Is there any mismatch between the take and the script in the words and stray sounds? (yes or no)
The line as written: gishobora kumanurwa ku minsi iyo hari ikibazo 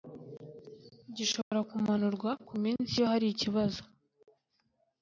yes